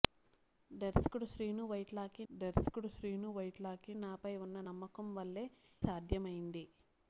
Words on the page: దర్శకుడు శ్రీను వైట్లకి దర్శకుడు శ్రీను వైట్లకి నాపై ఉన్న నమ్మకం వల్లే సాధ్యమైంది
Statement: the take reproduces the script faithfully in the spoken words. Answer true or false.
true